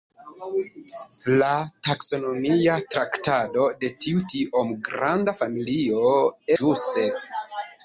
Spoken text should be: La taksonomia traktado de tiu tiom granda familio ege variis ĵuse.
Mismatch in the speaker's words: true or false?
true